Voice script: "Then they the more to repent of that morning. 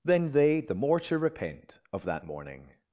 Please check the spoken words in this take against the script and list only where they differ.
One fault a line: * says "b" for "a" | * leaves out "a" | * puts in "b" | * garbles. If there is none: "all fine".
all fine